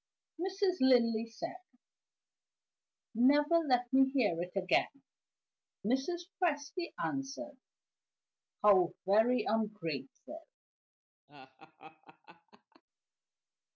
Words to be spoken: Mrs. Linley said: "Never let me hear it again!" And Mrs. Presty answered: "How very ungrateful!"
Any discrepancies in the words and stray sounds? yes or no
yes